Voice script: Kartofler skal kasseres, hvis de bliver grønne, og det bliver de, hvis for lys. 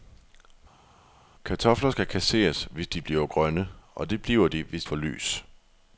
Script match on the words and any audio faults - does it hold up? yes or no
yes